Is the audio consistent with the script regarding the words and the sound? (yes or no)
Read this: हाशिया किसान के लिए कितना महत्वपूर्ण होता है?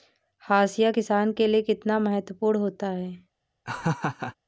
no